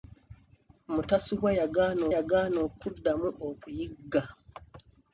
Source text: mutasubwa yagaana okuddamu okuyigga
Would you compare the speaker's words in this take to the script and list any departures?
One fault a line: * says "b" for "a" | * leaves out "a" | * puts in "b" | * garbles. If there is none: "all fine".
* puts in "yagaana"